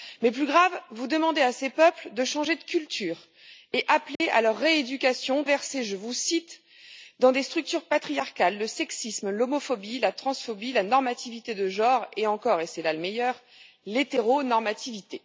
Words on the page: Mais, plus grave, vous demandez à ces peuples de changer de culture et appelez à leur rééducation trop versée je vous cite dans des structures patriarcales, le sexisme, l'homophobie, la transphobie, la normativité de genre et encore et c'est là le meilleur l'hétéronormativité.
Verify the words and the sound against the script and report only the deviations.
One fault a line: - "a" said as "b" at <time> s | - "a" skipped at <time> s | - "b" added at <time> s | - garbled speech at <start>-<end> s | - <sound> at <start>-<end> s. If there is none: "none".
- dropout at 4.2-4.2 s
- "trop" skipped at 5.4 s